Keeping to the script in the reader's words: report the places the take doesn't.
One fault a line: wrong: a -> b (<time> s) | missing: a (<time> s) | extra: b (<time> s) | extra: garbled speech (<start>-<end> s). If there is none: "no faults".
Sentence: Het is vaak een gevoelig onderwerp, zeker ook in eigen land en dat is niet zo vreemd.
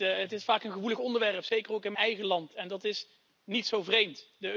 no faults